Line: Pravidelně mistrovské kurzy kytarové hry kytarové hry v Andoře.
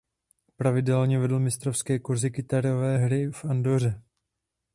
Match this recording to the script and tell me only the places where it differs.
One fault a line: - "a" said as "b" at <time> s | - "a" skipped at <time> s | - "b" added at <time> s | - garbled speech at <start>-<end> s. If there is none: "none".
- "vedl" added at 1.2 s
- "kytarové hry" skipped at 3.3 s